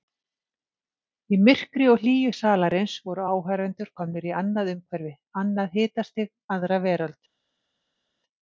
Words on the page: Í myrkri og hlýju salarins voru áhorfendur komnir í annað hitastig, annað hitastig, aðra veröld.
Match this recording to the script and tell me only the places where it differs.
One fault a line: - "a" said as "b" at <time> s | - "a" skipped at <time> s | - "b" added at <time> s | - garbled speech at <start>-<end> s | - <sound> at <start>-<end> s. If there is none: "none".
- "hitastig" said as "umhverfi" at 4.7 s